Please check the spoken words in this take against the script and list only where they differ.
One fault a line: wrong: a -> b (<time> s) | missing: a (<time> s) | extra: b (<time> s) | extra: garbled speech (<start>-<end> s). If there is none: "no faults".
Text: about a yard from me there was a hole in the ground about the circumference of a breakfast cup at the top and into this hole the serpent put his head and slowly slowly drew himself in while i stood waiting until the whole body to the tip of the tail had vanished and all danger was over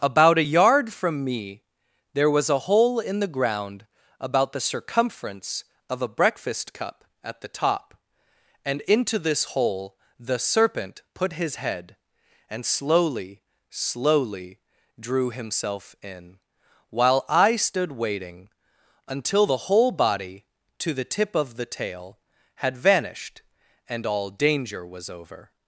no faults